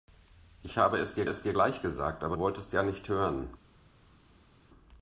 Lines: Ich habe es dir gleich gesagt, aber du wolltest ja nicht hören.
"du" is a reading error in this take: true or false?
true